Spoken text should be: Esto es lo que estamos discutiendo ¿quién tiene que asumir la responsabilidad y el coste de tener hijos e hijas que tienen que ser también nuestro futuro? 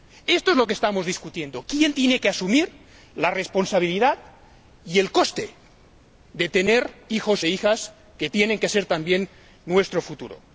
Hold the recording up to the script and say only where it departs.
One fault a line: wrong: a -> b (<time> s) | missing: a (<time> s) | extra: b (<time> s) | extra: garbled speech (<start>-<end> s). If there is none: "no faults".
no faults